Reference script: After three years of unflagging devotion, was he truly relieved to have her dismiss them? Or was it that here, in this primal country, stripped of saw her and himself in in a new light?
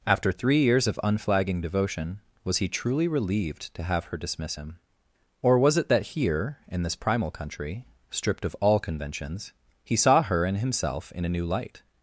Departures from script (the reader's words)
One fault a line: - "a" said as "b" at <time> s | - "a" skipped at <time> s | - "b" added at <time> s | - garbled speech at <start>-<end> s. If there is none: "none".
- "them" said as "him" at 4.5 s
- "all conventions he" added at 8.6 s
- "in" skipped at 11.2 s